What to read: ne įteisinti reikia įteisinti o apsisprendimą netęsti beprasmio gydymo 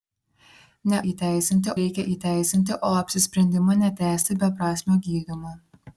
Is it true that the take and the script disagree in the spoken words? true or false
false